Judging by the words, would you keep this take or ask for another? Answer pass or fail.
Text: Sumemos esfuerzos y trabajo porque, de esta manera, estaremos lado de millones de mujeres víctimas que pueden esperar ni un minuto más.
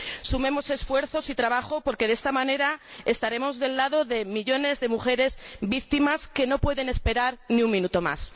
fail